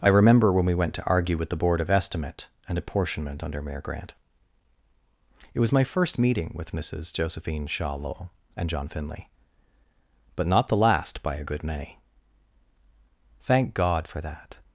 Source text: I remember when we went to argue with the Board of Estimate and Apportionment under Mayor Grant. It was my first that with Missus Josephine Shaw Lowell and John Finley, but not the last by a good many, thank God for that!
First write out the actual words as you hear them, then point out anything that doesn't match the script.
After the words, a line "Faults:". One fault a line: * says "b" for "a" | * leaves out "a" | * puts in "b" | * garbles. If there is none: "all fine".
I remember when we went to argue with the Board of Estimate and Apportionment under Mayor Grant. It was my first meeting with Missus Josephine Shaw Lowell and John Finley, but not the last by a good many, thank God for that!
Faults:
* says "meeting" for "that"